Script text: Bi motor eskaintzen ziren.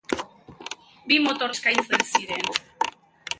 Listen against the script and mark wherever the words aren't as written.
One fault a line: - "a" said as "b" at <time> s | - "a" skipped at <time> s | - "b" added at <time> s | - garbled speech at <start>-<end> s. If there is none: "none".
none